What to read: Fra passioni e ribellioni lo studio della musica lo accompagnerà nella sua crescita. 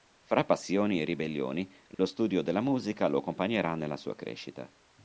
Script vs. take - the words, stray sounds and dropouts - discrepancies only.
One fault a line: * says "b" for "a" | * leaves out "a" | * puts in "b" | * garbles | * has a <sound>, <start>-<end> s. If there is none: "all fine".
* has a dropout, 1.9-2.0 s